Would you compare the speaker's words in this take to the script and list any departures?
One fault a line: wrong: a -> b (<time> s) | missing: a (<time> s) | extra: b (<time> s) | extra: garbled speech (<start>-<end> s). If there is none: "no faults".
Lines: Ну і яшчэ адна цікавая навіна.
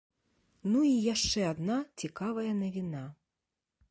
no faults